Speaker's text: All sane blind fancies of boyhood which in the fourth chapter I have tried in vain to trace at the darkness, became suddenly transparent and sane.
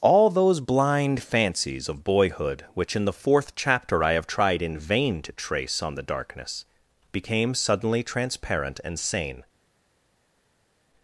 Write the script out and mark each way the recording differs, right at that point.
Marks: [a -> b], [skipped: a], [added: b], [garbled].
All [sane -> those] blind fancies of boyhood which in the fourth chapter I have tried in vain to trace [at -> on] the darkness, became suddenly transparent and sane.